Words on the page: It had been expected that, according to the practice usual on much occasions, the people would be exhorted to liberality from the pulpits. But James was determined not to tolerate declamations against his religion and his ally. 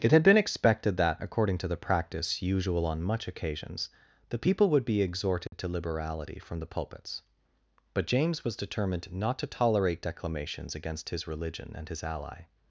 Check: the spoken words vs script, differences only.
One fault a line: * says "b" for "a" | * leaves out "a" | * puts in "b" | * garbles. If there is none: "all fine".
all fine